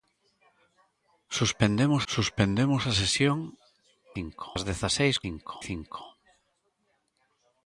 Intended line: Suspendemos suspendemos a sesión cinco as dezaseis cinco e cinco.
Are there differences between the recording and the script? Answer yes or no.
no